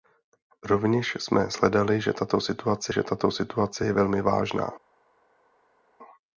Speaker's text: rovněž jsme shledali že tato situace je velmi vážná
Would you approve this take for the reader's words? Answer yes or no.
no